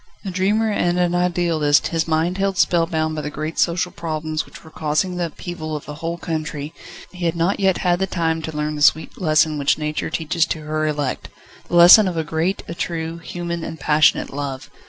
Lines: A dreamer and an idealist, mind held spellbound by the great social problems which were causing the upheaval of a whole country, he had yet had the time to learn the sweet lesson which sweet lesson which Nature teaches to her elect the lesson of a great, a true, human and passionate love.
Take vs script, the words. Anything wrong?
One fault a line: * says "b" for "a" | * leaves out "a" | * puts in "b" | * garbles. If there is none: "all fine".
* puts in "his"
* puts in "not"
* leaves out "sweet lesson which"